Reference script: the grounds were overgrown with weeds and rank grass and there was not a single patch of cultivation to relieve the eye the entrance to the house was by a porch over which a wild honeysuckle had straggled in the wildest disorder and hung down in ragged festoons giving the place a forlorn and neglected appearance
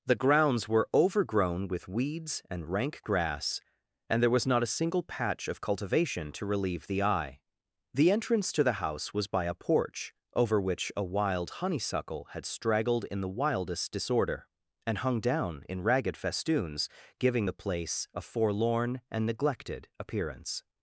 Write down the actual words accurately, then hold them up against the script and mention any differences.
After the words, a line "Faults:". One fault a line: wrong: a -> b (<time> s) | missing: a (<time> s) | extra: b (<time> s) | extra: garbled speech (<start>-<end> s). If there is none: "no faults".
the grounds were overgrown with weeds and rank grass and there was not a single patch of cultivation to relieve the eye the entrance to the house was by a porch over which a wild honeysuckle had straggled in the wildest disorder and hung down in ragged festoons giving the place a forlorn and neglected appearance
Faults:
no faults